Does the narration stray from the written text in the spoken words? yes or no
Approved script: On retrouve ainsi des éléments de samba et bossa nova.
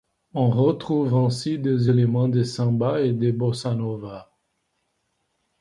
yes